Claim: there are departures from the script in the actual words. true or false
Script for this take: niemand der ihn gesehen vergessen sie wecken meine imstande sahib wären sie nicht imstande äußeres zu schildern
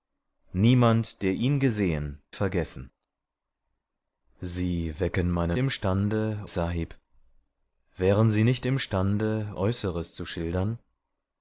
false